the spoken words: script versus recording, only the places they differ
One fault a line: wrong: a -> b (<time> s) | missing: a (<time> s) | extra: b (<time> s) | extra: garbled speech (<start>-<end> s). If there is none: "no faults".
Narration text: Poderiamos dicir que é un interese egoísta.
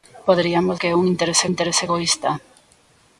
missing: dicir (0.8 s)
extra: interese (1.5 s)